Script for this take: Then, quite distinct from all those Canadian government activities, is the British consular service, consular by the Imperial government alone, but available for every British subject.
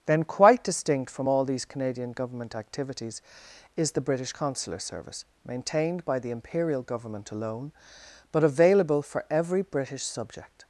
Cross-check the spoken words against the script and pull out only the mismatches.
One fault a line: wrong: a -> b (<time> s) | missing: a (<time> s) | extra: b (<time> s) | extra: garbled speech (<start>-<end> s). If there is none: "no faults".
wrong: those -> these (1.4 s)
wrong: consular -> maintained (5.5 s)